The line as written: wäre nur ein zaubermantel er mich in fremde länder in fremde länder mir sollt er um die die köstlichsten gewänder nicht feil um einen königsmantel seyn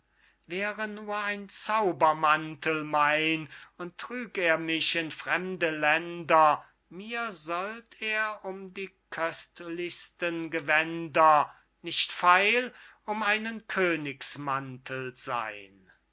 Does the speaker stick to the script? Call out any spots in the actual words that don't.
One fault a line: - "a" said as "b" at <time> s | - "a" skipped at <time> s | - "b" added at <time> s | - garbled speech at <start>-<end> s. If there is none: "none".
- "er mich in fremde länder" said as "mein und trüg er mich" at 2.9 s
- "die" skipped at 8.9 s